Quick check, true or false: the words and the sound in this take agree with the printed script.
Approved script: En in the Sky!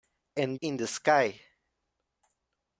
true